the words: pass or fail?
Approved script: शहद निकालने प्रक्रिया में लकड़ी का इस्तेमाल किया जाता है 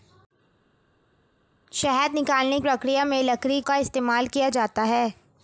pass